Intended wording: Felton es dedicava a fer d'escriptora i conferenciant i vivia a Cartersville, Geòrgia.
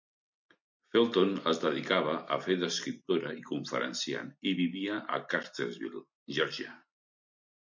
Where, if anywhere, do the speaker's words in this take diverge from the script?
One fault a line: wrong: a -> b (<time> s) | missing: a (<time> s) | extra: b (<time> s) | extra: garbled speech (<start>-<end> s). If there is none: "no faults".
no faults